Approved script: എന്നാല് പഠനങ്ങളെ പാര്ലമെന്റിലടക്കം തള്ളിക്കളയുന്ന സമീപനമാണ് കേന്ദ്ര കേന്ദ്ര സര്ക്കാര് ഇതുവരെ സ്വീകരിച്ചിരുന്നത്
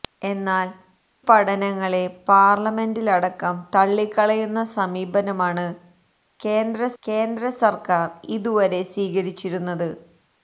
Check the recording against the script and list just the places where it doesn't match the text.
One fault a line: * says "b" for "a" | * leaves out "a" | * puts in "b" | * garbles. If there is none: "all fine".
all fine